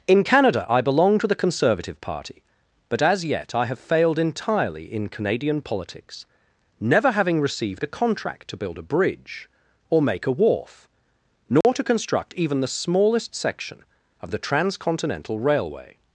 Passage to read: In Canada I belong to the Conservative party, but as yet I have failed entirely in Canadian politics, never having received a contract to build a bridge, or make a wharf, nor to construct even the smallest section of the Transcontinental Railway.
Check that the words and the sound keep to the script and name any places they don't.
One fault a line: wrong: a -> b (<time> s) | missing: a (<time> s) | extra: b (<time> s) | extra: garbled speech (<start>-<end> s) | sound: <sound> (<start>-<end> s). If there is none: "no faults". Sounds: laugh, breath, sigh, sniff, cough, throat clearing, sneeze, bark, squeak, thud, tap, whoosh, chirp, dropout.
sound: dropout (11.6-11.6 s)